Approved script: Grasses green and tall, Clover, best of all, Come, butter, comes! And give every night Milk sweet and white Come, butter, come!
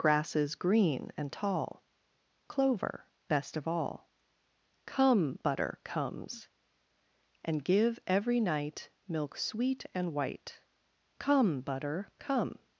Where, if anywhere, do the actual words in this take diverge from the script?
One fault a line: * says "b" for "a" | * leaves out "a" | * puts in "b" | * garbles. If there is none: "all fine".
all fine